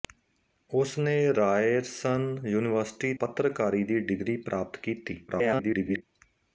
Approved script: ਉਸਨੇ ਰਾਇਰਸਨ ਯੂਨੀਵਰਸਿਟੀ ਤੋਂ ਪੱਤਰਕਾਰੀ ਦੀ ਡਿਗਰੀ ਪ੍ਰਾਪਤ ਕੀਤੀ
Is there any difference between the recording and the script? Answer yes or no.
yes